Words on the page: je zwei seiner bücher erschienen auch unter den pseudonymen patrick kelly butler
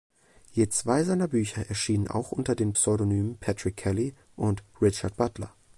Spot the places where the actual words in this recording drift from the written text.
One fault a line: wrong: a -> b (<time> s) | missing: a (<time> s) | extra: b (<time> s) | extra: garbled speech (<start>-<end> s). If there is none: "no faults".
extra: und richard (4.4 s)